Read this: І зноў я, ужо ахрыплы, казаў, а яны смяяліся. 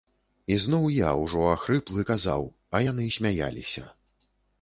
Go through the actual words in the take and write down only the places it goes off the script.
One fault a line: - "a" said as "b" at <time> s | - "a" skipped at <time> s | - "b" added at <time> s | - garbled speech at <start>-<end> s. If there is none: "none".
none